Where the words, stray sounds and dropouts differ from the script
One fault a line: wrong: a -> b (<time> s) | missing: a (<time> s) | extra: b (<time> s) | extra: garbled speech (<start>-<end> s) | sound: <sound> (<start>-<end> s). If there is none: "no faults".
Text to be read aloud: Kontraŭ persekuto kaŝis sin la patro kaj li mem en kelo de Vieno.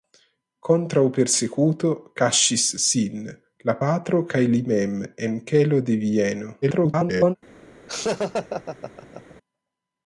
extra: garbled speech (6.6-7.4 s)
sound: laugh (7.9-9.4 s)